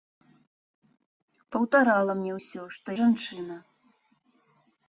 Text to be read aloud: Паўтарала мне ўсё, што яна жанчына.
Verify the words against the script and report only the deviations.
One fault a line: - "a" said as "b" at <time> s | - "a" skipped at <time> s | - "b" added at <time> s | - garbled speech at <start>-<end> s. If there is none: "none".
- "яна" skipped at 2.9 s